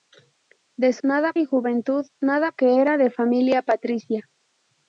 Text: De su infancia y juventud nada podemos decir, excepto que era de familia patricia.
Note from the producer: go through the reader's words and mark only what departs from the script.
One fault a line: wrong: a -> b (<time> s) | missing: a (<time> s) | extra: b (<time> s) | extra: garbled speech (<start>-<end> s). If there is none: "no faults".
wrong: infancia -> nada (1.0 s)
missing: podemos decir excepto (2.5 s)